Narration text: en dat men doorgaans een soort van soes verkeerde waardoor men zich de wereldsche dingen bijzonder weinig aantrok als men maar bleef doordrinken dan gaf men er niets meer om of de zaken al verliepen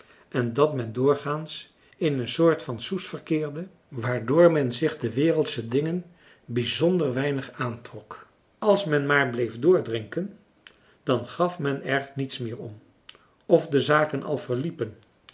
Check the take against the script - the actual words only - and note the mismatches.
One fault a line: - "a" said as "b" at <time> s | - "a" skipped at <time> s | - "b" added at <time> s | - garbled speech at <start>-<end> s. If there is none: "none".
- "in" added at 2.0 s